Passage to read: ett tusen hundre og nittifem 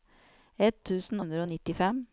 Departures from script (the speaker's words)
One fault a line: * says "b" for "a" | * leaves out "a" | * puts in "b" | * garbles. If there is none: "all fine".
all fine